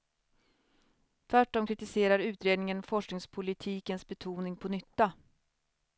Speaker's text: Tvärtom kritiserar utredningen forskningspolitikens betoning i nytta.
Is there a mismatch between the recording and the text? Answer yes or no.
yes